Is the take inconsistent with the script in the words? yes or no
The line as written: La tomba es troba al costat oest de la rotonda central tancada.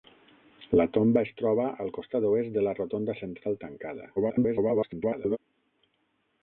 yes